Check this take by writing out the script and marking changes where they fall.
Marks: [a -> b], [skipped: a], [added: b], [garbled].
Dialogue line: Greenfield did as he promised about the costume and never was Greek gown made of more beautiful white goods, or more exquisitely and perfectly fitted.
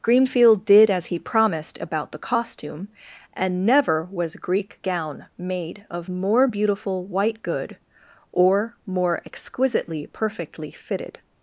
Greenfield did as he promised about the costume and never was Greek gown made of more beautiful white [goods, -> good] or more exquisitely [skipped: and] perfectly fitted.